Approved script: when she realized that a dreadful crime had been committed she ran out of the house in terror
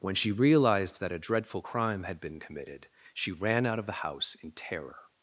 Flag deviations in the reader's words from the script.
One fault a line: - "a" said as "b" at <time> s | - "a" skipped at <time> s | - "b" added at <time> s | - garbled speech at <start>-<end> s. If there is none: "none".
none